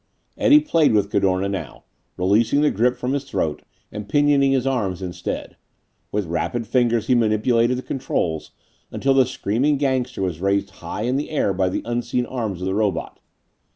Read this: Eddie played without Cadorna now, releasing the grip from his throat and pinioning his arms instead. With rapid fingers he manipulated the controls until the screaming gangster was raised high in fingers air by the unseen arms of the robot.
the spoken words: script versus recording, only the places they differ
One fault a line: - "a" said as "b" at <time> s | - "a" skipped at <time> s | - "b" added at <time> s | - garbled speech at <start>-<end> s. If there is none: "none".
- "without" said as "with" at 0.9 s
- "fingers" said as "the" at 11.2 s